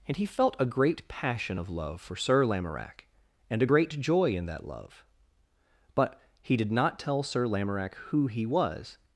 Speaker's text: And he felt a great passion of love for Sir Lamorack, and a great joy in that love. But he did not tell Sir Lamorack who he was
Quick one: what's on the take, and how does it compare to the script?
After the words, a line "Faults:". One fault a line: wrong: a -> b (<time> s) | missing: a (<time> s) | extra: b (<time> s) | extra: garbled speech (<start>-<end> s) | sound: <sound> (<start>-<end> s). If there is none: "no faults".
And he felt a great passion of love for Sir Lamorack, and a great joy in that love. But he did not tell Sir Lamorack who he was
Faults:
no faults